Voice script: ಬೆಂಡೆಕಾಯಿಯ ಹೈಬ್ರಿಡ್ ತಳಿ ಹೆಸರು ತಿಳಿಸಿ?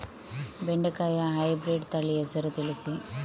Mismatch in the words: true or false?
false